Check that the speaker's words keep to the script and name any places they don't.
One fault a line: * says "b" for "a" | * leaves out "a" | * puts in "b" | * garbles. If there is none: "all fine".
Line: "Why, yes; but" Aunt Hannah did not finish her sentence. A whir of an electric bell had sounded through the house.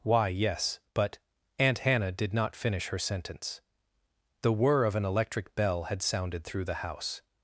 * says "The" for "A"